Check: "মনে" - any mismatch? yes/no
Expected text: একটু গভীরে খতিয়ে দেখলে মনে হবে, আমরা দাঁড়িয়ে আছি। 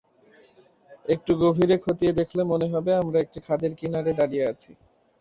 no